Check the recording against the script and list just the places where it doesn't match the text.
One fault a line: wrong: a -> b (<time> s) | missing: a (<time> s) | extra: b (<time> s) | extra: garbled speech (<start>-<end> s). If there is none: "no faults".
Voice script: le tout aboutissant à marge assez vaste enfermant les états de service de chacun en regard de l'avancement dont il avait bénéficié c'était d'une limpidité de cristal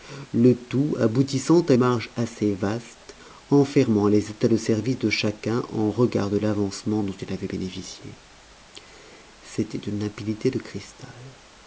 no faults